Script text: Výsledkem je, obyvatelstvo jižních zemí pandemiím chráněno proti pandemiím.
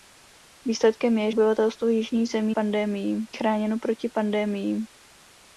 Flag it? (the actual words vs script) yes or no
no